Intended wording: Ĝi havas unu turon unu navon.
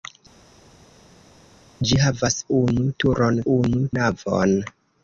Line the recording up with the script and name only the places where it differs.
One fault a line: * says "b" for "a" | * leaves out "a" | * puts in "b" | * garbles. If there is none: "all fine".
all fine